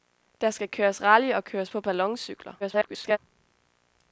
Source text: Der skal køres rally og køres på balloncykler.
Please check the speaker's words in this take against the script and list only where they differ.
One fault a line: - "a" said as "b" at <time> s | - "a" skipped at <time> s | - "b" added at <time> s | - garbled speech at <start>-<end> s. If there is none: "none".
- garbled speech at 2.6-3.2 s